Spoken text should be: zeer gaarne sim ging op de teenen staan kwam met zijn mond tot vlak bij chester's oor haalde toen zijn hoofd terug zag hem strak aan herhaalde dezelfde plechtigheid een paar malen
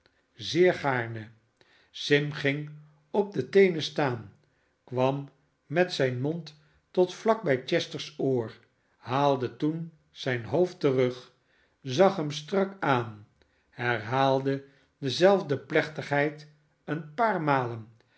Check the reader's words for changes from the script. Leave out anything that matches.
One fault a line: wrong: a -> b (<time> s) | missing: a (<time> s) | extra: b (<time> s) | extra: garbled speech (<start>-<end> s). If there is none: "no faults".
no faults